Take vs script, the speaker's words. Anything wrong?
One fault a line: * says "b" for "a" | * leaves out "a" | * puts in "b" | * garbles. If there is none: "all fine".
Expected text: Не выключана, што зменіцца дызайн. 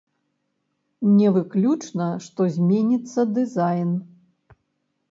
all fine